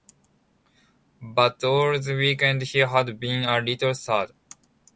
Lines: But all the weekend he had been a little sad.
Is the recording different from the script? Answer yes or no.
no